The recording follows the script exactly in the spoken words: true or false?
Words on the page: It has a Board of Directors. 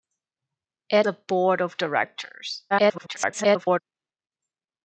false